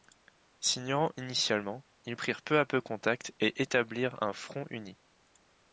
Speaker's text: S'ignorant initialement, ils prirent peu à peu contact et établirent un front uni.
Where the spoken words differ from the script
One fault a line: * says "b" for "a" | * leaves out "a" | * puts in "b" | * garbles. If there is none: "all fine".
all fine